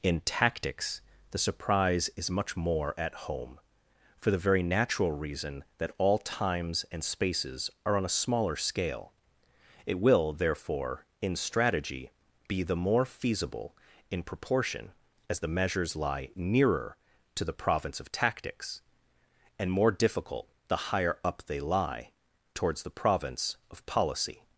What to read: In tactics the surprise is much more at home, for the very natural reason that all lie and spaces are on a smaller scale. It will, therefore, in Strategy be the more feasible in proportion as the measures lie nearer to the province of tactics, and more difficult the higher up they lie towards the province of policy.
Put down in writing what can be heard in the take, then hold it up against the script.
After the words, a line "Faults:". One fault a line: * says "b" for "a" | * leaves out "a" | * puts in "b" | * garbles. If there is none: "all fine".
In tactics the surprise is much more at home, for the very natural reason that all times and spaces are on a smaller scale. It will, therefore, in Strategy be the more feasible in proportion as the measures lie nearer to the province of tactics, and more difficult the higher up they lie towards the province of policy.
Faults:
* says "times" for "lie"